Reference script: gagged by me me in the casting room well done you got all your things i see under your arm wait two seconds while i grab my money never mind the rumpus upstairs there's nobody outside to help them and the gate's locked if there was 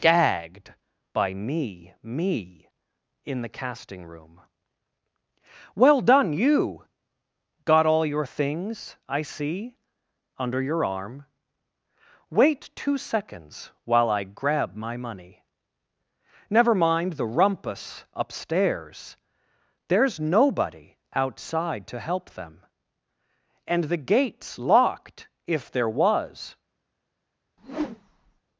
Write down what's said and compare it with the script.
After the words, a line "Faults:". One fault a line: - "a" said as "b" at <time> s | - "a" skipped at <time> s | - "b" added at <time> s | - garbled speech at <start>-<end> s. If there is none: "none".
gagged by me me in the casting room well done you got all your things i see under your arm wait two seconds while i grab my money never mind the rumpus upstairs there's nobody outside to help them and the gate's locked if there was
Faults:
none